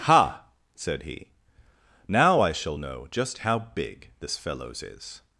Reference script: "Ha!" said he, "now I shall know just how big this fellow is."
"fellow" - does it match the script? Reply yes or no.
no